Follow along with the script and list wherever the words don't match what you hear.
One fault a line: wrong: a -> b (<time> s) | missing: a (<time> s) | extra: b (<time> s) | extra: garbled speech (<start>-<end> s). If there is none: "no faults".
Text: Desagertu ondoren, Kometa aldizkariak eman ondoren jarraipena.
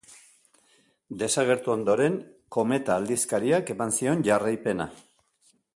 wrong: ondoren -> zion (4.0 s)